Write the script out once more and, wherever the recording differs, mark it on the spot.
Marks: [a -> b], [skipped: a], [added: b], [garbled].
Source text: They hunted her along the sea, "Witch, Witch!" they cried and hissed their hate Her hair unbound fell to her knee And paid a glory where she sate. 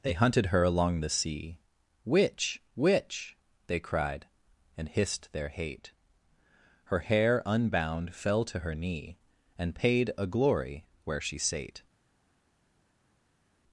They hunted her along the sea, "Witch, Witch!" they cried and hissed their hate Her hair unbound fell to her knee And paid a glory where she sate.